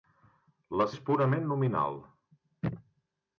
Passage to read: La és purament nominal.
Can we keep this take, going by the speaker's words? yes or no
yes